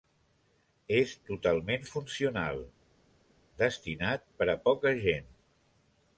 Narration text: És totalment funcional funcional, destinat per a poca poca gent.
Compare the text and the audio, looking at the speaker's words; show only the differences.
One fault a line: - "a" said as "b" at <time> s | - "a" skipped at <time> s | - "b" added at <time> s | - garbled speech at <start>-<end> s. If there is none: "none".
- "funcional" skipped at 2.6 s
- "poca" skipped at 4.9 s